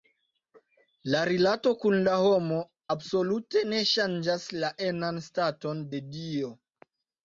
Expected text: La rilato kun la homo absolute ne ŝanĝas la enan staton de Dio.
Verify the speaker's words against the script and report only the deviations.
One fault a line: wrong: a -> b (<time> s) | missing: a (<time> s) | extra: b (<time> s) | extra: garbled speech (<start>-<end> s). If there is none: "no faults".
no faults